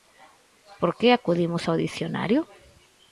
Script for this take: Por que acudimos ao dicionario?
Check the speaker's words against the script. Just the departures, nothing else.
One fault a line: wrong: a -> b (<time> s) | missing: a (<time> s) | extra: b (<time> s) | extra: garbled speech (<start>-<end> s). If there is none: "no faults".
no faults